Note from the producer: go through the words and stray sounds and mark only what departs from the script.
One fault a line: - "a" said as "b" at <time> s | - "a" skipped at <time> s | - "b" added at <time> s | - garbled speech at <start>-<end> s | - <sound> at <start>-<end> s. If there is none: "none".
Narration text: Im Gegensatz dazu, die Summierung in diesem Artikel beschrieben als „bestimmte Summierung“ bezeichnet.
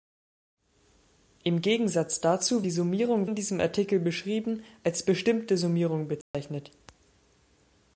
- dropout at 6.2-6.3 s